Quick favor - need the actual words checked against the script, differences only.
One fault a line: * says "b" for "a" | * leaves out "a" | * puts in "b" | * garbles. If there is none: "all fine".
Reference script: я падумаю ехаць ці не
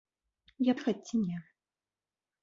* leaves out "падумаю"